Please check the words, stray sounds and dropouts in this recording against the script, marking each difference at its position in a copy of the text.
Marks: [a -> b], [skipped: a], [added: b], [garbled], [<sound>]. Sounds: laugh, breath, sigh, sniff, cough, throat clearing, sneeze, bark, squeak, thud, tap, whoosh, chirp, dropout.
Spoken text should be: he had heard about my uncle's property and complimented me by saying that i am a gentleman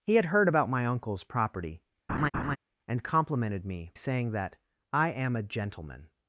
he had heard about my uncle's property [laugh] and complimented me [skipped: by] saying that i am a gentleman